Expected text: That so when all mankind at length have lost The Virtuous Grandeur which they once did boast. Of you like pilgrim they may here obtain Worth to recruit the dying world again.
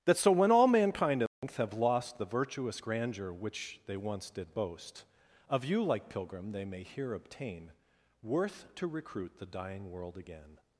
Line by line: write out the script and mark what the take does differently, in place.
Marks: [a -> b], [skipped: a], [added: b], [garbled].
That so when all mankind at length have lost The Virtuous Grandeur which they once did boast. Of you like pilgrim they may here obtain Worth to recruit the dying world again.